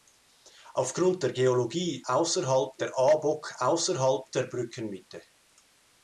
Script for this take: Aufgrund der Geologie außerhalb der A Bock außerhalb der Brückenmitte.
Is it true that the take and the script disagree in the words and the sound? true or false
false